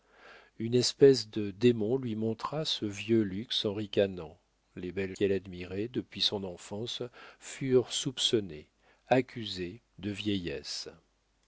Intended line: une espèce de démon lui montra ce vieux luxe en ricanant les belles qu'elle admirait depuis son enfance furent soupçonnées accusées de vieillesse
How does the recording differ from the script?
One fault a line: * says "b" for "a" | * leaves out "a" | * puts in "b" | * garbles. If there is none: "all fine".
all fine